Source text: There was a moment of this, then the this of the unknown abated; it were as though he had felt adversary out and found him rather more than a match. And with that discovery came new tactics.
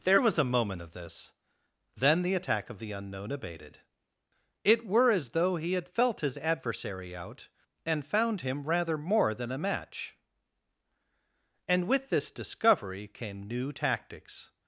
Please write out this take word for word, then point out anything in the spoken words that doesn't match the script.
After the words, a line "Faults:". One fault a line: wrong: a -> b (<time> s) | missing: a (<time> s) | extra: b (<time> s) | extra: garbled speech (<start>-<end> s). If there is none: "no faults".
There was a moment of this, then the attack of the unknown abated; it were as though he had felt his adversary out and found him rather more than a match. And with this discovery came new tactics.
Faults:
wrong: this -> attack (2.3 s)
extra: his (6.2 s)
wrong: that -> this (12.1 s)